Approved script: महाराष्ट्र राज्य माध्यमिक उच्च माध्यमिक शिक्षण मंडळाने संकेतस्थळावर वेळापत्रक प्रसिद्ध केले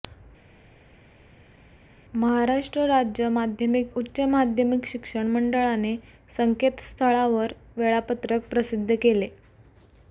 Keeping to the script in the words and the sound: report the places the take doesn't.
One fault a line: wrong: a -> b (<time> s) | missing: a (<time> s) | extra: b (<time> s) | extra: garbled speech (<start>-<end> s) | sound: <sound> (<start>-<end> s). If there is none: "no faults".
no faults